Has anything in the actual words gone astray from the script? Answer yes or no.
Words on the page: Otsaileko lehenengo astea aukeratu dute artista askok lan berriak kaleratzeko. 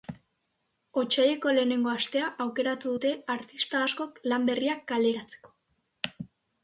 no